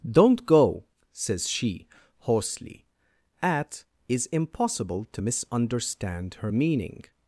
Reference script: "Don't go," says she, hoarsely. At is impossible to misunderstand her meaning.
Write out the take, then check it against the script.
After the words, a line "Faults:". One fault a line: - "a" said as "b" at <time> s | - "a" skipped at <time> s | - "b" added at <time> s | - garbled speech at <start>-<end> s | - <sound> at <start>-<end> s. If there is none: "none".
"Don't go," says she, hoarsely. At is impossible to misunderstand her meaning.
Faults:
none